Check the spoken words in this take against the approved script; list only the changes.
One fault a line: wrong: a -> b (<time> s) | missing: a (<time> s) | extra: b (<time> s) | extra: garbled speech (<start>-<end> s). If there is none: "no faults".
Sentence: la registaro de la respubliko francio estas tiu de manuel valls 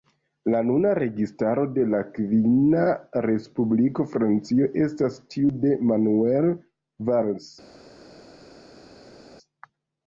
extra: nuna (0.7 s)
extra: kvina (2.1 s)